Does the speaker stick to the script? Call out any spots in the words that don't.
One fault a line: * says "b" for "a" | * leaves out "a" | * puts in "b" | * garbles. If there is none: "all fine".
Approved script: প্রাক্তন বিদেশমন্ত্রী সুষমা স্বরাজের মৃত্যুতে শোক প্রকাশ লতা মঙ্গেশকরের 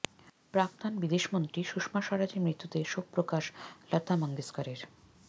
all fine